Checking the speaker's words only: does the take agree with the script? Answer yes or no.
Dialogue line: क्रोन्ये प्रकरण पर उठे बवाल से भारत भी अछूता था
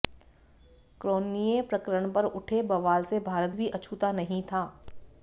no